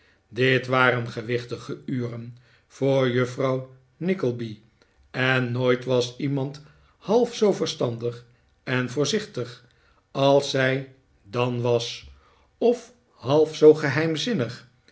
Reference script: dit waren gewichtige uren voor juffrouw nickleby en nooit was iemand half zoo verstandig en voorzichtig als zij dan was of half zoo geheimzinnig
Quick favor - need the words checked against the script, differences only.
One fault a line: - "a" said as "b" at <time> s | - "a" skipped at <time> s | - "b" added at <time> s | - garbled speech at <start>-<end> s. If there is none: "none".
none